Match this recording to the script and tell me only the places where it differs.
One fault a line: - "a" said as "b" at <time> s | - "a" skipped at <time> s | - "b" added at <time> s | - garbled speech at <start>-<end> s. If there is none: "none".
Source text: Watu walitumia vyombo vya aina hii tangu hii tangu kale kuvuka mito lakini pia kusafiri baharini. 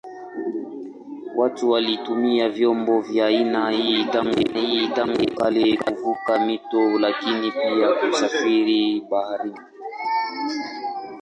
none